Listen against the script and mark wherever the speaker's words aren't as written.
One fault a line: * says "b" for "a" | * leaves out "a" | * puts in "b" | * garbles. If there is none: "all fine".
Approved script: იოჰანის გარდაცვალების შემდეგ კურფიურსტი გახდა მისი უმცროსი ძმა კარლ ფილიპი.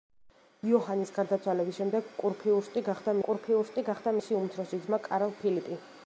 * puts in "კურფიურსტი გახდა"